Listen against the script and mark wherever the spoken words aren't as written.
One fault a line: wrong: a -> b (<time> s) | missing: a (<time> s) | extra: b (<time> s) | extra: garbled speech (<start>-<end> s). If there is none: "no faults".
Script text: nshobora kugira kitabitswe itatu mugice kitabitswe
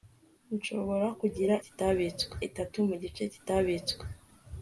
no faults